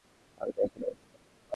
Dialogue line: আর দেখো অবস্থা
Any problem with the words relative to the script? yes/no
no